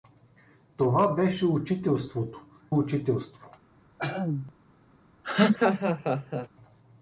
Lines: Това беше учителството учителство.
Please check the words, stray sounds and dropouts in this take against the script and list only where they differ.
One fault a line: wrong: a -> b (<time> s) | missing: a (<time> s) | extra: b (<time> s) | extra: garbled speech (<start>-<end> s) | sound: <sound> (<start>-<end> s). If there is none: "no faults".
sound: throat clearing (4.0-4.5 s)
sound: laugh (5.2-6.5 s)